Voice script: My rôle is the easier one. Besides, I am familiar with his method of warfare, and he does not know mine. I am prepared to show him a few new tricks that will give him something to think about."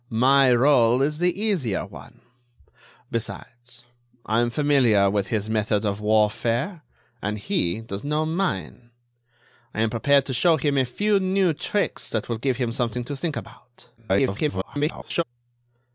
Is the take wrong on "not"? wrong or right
wrong